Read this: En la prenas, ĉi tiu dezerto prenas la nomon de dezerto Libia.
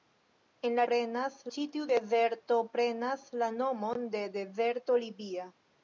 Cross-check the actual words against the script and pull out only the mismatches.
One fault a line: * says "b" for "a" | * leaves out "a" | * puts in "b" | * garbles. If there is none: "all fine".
all fine